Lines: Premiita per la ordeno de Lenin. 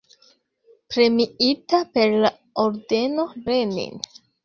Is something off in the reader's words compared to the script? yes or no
yes